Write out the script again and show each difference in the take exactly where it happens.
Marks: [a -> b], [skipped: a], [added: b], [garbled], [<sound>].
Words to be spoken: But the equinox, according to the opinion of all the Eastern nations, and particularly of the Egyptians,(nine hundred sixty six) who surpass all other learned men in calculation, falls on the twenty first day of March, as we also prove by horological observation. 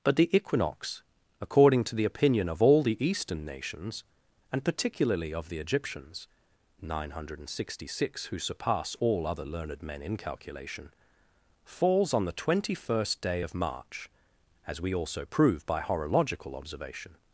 But the equinox, according to the opinion of all the Eastern nations, and particularly of the Egyptians,(nine hundred sixty six) who surpass all other learned men in calculation, falls on the twenty first day of March, as we also prove by horological observation.